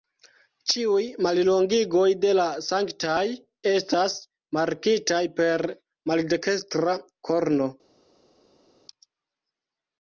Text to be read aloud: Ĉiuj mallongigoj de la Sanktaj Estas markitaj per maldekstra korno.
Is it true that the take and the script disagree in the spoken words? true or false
false